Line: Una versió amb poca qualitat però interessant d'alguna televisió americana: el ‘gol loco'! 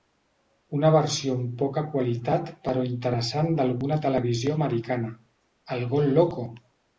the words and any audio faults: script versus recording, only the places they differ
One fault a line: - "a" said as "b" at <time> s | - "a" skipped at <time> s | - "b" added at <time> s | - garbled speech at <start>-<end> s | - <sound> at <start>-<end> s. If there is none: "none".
none